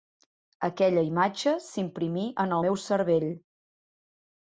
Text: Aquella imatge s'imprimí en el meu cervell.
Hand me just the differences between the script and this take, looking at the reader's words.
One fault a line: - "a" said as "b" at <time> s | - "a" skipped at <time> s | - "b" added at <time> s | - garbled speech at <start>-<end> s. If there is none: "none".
- "el" skipped at 2.6 s